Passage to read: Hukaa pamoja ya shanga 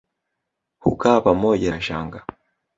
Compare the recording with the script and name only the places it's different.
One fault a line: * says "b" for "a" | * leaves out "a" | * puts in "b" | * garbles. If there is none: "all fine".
all fine